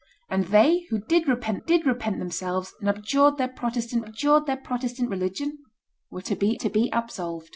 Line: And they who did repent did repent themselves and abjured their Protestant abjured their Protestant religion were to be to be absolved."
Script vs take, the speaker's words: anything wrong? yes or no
no